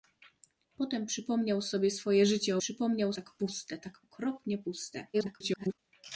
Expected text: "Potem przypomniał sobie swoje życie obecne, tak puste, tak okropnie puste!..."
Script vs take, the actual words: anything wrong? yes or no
yes